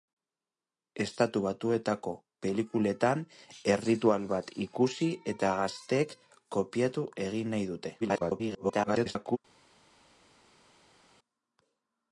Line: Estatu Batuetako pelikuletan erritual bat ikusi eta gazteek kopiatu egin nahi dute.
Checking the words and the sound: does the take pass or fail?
fail